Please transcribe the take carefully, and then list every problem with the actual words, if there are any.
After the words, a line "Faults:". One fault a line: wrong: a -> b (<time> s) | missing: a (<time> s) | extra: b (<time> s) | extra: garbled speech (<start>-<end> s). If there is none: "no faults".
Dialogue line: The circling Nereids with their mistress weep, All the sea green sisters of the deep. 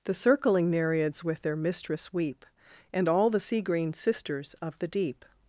The circling Nereids with their mistress weep, And all the sea green sisters of the deep.
Faults:
extra: And (2.9 s)